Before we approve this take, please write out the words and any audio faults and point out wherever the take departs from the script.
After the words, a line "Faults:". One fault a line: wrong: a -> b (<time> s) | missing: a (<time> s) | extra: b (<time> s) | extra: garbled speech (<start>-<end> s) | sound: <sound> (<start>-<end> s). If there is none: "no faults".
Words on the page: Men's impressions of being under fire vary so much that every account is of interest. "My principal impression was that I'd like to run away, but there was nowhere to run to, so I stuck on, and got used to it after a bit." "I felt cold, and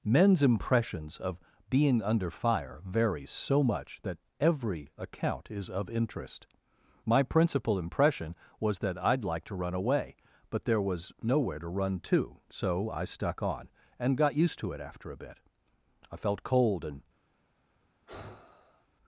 Men's impressions of being under fire vary so much that every account is of interest. "My principal impression was that I'd like to run away, but there was nowhere to run to, so I stuck on, and got used to it after a bit." "I felt cold, and
Faults:
sound: sigh (18.1-18.9 s)